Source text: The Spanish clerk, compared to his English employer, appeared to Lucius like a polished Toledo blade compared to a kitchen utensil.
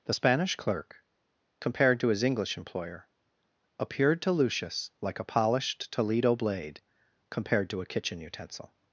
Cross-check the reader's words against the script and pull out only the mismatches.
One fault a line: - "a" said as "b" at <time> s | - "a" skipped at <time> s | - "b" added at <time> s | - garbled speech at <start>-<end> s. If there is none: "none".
none